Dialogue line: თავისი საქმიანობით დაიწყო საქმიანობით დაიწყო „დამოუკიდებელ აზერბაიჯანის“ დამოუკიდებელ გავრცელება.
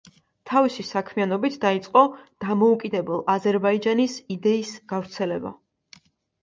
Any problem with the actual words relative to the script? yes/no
yes